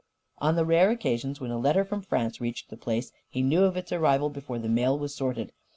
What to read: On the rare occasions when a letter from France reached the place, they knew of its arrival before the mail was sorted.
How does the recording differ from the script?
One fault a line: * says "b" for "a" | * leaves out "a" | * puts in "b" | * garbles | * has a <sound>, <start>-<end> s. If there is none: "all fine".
* says "he" for "they"